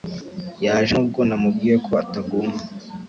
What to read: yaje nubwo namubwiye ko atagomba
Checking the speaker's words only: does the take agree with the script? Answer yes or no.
yes